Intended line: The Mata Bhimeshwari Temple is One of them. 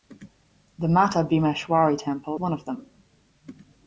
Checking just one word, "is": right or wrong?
wrong